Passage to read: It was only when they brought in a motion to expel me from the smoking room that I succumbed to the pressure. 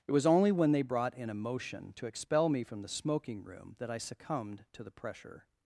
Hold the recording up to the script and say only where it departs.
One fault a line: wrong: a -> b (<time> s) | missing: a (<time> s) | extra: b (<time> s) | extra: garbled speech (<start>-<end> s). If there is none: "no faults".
no faults